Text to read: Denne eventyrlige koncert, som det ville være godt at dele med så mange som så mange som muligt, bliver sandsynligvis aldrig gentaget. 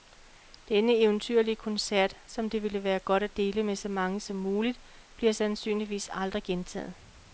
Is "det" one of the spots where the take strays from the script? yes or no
no